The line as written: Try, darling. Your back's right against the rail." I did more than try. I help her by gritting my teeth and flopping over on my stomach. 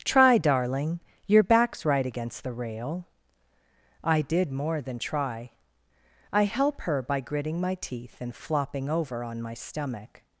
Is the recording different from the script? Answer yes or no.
no